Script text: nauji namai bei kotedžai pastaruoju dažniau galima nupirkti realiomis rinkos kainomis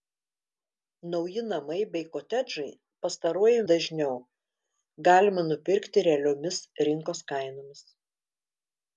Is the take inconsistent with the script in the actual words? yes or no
no